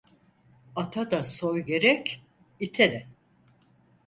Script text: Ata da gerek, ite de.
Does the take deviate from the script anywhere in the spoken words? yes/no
yes